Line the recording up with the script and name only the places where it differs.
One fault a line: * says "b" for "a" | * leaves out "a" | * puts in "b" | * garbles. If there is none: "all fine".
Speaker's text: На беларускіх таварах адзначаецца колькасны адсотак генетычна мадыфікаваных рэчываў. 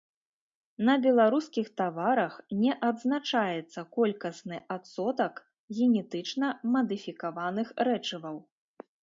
* puts in "не"